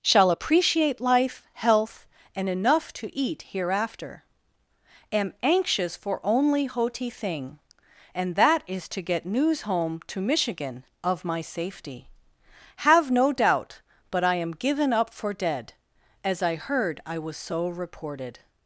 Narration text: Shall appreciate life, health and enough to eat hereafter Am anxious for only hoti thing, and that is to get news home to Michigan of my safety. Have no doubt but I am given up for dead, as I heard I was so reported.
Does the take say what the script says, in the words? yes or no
yes